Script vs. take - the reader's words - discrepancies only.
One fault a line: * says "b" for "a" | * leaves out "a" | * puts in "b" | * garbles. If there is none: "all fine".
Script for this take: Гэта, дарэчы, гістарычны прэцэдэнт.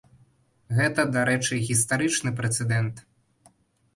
all fine